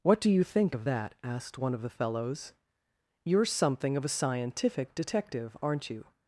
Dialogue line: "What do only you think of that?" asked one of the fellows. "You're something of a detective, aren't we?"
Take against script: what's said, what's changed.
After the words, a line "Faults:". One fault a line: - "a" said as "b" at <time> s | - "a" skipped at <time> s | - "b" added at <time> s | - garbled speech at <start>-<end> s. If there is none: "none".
"What do you think of that?" asked one of the fellows. "You're something of a scientific detective, aren't you?"
Faults:
- "only" skipped at 0.3 s
- "scientific" added at 4.2 s
- "we" said as "you" at 5.9 s